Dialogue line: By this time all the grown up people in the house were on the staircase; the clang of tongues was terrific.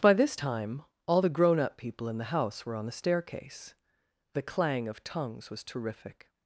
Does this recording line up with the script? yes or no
yes